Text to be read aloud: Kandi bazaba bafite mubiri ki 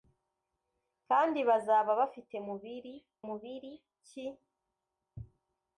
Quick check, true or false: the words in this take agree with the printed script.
false